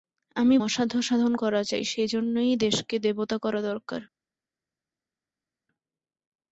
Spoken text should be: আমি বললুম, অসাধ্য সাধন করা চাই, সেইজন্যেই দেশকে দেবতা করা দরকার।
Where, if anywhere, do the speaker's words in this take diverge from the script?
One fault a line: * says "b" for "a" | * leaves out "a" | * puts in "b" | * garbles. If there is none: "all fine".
* leaves out "বললুম"